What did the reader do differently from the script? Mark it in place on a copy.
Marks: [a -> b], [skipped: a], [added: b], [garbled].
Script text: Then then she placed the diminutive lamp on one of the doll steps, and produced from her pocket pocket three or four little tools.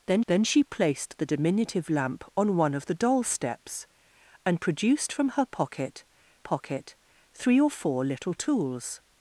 Then then she placed the diminutive lamp on one of the doll steps, and produced from her pocket pocket three or four little tools.